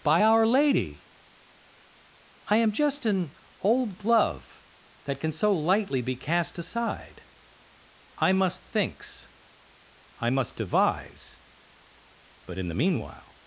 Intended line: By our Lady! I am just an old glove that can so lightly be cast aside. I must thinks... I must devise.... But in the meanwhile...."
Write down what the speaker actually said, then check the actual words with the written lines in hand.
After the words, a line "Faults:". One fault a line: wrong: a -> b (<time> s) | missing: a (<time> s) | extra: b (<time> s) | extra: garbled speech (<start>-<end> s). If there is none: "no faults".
By our Lady! I am just an old glove that can so lightly be cast aside. I must thinks... I must devise.... But in the meanwhile...."
Faults:
no faults